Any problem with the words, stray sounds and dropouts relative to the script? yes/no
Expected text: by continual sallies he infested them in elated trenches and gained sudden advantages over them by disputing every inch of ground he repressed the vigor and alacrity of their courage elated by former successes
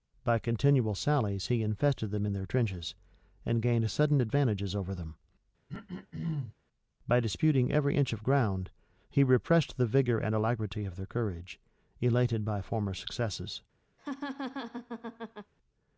yes